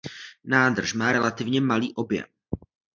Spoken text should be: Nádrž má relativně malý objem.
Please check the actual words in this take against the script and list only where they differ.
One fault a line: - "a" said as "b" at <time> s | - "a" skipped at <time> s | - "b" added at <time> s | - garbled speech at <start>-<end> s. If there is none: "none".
none